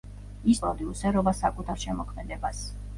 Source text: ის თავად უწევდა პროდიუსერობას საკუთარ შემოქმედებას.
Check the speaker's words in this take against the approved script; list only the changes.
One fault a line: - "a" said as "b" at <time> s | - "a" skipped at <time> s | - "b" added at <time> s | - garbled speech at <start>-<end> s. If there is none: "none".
- "თავად უწევდა" skipped at 0.6 s